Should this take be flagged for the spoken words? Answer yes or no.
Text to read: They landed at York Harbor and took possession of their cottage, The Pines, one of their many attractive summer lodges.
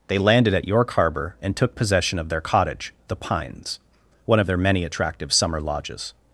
no